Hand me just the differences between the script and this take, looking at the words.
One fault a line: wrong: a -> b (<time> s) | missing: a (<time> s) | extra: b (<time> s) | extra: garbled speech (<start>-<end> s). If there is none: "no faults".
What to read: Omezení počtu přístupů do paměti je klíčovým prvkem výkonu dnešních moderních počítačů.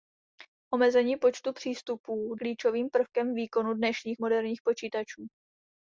missing: do paměti je (2.4 s)